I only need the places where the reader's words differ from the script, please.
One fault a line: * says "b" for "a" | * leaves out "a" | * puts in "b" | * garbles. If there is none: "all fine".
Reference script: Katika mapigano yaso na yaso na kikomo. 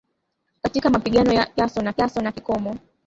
all fine